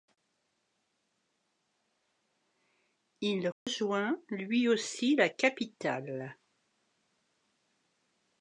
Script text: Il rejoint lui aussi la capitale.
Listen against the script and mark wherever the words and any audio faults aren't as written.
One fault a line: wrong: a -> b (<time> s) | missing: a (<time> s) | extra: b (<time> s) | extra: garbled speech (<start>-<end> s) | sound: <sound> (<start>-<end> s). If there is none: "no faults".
sound: dropout (3.5-3.7 s)